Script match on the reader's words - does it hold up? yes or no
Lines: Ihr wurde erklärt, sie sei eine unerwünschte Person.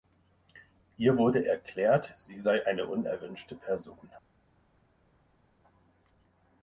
yes